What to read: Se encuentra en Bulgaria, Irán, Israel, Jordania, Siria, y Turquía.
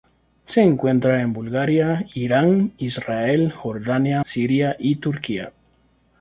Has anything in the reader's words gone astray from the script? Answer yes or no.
no